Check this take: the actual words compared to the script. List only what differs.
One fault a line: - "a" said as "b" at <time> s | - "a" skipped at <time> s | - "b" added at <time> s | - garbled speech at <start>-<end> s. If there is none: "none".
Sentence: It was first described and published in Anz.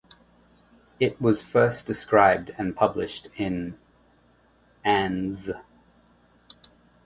none